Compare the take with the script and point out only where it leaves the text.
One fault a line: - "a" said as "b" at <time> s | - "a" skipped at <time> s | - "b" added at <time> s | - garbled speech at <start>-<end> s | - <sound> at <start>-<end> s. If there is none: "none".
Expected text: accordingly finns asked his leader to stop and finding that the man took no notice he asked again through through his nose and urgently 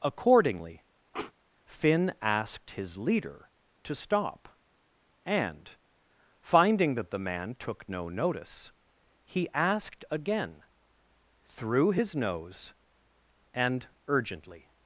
- sniff at 1.1-1.3 s
- "finns" said as "finn" at 1.6 s
- "through" skipped at 11.9 s